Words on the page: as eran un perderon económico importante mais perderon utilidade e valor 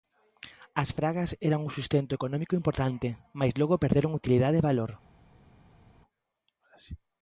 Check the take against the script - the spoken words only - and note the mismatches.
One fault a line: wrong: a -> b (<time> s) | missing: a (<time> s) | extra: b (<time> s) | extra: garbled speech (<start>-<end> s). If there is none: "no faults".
extra: fragas (1.0 s)
wrong: perderon -> sustento (1.8 s)
extra: logo (3.6 s)